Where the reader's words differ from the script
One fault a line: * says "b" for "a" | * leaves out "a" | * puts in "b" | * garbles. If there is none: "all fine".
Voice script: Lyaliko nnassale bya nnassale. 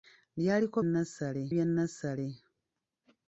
all fine